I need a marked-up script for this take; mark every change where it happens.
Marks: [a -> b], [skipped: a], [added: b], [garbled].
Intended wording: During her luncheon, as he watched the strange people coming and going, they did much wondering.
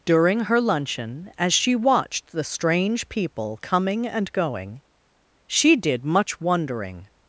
During her luncheon, as [he -> she] watched the strange people coming and going, [they -> she] did much wondering.